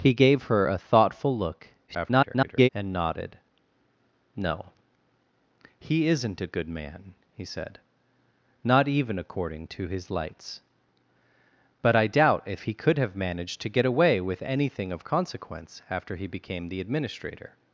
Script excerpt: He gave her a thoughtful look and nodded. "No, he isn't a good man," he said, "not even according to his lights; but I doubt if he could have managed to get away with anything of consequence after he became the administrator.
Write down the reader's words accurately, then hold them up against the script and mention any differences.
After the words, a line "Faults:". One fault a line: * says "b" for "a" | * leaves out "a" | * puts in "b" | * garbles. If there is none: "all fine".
He gave her a thoughtful look [garbled] and nodded. "No, he isn't a good man," he said, "not even according to his lights; but I doubt if he could have managed to get away with anything of consequence after he became the administrator.
Faults:
* garbles